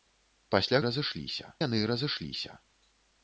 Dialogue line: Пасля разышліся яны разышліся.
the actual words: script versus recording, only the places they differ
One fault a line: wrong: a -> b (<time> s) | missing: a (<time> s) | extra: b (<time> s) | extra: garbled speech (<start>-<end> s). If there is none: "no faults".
no faults